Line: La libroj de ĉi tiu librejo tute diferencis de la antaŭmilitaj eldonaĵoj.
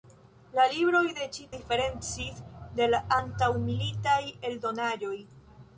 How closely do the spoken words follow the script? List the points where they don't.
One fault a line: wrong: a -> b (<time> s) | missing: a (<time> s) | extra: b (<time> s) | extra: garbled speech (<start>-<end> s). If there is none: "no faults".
missing: tiu librejo tute (1.4 s)